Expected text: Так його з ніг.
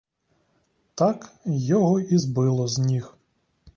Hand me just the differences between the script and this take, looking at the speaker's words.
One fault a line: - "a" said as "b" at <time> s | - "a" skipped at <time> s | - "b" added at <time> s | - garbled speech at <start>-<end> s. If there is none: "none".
- "і збило" added at 2.0 s